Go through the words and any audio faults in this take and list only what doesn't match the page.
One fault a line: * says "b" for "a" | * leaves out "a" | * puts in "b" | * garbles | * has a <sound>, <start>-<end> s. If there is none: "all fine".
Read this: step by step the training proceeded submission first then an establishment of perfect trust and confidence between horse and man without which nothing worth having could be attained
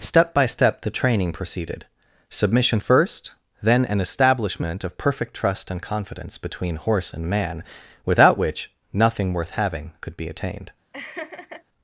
* has a laugh, 10.9-11.6 s